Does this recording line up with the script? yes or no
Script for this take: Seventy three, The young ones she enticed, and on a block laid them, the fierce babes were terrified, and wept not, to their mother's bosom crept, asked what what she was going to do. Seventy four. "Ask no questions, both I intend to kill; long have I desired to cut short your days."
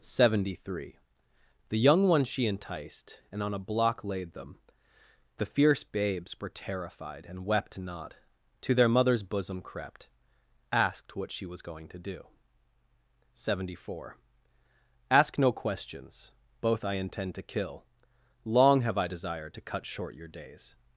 no